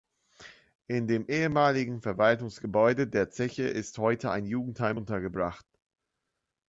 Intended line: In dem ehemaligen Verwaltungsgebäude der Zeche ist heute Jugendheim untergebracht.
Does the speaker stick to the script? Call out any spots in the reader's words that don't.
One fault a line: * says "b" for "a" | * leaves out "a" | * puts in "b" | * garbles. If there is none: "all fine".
* puts in "ein"